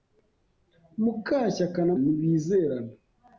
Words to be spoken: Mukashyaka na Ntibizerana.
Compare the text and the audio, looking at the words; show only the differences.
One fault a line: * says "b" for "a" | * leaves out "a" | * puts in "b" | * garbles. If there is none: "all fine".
all fine